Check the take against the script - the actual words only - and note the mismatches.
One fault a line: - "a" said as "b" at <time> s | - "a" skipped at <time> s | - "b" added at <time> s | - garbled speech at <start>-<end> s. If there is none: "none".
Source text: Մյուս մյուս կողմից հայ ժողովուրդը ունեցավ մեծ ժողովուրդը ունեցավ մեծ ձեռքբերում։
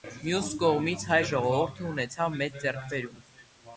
- "մյուս" skipped at 0.5 s
- "ժողովուրդը ունեցավ մեծ" skipped at 2.6 s